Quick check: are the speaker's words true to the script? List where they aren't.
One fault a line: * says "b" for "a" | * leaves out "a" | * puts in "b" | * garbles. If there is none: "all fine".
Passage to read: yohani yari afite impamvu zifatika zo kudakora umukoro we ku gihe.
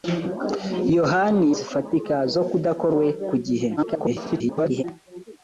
* leaves out "yari afite impamvu"
* leaves out "umukoro"
* garbles